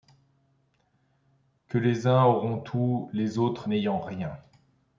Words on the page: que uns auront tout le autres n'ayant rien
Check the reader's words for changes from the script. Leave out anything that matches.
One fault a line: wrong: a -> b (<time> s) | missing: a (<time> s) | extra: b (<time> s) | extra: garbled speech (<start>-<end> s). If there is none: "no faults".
extra: les (1.8 s)
wrong: le -> les (3.1 s)